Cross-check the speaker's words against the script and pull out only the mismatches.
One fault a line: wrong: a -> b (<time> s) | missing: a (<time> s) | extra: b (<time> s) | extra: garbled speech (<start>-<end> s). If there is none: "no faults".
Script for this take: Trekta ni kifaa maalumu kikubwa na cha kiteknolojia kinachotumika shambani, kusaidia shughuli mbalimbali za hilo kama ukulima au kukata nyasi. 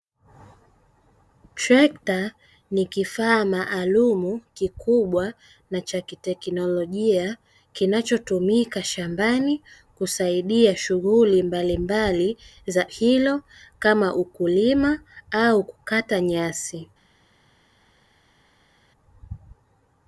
no faults